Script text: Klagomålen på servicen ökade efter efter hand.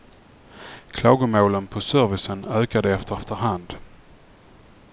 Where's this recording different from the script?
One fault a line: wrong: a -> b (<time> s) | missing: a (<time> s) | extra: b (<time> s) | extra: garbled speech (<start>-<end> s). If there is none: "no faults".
no faults